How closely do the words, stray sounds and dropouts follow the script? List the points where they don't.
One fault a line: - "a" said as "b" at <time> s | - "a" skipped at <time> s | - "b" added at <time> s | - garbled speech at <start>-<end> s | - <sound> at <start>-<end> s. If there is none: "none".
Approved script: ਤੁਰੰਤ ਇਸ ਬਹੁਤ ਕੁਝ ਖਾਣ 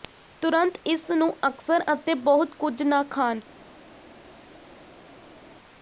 - "ਨੂੰ ਅਕਸਰ ਅਤੇ" added at 1.1 s
- "ਨਾ" added at 2.8 s